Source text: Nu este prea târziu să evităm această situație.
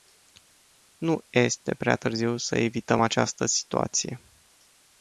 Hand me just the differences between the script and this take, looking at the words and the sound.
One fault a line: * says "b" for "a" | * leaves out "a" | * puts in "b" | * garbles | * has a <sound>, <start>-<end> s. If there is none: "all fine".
all fine